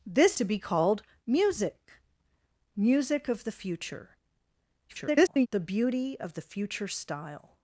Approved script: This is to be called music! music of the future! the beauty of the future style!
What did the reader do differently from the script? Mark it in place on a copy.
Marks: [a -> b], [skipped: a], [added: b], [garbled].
This [skipped: is] to be called music! music of the future! [garbled] the beauty of the future style!